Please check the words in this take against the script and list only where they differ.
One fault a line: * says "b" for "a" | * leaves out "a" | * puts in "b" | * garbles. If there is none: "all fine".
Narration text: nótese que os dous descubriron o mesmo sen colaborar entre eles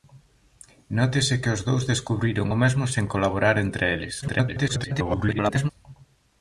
* garbles